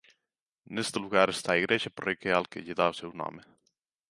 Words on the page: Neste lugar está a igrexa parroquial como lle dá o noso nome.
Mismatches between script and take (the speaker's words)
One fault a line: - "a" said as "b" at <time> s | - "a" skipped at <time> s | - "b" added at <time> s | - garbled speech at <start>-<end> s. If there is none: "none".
- "como" said as "que" at 2.5 s
- "noso" said as "seu" at 3.0 s